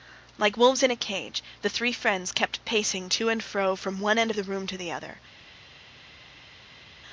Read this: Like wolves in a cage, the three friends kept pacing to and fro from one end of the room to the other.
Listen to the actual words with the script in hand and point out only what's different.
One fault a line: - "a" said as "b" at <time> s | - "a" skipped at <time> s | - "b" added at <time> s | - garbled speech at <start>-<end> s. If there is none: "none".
none